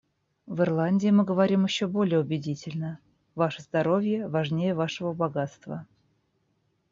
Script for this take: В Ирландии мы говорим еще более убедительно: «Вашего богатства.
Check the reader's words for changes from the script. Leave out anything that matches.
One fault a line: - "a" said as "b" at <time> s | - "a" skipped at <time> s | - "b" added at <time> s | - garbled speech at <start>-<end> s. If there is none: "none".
- "Ваше здоровье важнее" added at 3.4 s